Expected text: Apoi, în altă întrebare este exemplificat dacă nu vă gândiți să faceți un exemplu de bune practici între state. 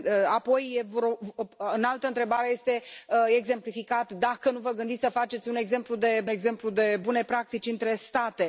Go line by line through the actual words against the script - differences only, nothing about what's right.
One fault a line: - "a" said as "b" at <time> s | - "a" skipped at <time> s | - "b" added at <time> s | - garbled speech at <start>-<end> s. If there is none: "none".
- "exemplu de" added at 6.3 s